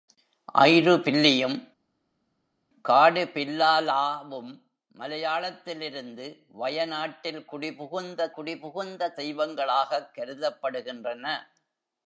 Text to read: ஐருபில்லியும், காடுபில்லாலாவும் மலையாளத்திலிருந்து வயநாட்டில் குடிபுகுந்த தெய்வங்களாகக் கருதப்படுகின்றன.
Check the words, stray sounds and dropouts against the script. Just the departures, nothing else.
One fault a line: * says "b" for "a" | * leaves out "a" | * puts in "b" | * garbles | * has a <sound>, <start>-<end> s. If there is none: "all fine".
* puts in "குடிபுகுந்த"